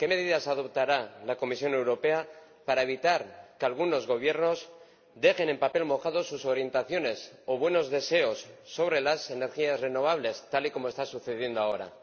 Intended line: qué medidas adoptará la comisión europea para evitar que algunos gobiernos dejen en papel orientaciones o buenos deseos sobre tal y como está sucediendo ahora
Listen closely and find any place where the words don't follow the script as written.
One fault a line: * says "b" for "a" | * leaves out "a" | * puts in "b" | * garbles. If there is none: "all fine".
* puts in "mojado sus"
* puts in "las energías renovables"